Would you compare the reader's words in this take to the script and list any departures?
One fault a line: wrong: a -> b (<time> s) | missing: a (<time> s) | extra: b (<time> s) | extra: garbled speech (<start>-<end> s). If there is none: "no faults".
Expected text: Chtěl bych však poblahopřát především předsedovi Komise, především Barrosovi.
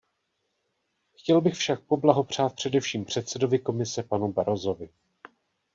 wrong: především -> panu (4.0 s)